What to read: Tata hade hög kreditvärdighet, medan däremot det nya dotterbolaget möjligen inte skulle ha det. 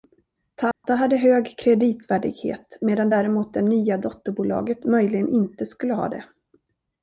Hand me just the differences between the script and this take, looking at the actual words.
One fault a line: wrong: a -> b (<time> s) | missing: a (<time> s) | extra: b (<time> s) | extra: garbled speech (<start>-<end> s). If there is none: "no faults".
no faults